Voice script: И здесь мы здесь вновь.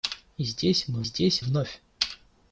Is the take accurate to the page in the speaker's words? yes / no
yes